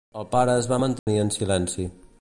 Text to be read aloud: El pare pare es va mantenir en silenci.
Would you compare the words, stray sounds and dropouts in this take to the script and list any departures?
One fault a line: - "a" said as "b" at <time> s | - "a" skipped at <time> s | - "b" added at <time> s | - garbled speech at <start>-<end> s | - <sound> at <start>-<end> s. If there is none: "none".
- "pare" skipped at 0.6 s
- dropout at 1.0-1.1 s